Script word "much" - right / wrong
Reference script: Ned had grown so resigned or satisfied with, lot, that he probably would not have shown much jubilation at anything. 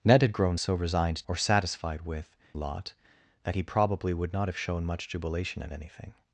right